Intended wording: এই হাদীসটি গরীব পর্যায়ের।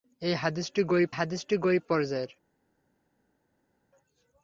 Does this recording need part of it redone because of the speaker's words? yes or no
yes